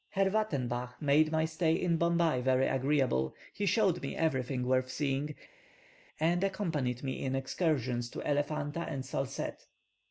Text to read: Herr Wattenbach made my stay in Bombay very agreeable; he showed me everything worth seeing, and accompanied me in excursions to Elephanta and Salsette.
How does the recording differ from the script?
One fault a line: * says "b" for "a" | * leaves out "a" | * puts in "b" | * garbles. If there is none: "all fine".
all fine